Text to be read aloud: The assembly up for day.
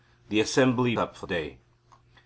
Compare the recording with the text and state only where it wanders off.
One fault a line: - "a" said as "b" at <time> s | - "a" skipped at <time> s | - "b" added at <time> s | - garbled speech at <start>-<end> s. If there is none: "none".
none